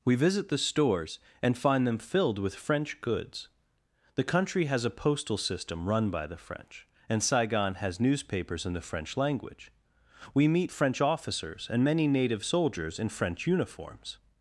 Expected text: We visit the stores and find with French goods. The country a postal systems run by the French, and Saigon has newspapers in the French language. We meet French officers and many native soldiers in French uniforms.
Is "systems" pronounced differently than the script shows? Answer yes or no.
yes